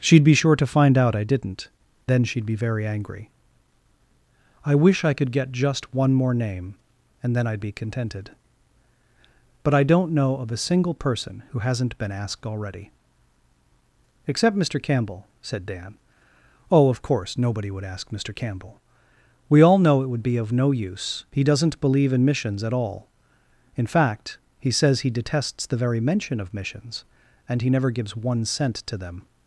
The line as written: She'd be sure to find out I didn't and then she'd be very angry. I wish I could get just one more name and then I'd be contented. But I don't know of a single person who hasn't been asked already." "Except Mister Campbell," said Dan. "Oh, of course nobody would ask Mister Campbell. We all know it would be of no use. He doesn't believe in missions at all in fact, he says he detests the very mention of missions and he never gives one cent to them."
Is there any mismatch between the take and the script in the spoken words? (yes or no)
yes